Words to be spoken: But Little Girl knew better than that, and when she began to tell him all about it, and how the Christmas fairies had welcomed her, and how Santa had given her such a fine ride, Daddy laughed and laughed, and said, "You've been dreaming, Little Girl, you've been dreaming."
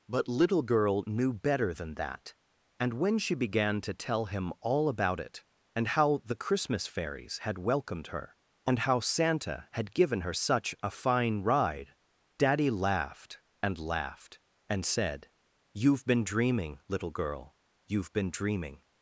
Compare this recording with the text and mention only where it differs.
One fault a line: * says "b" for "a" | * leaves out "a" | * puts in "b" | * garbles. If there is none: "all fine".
all fine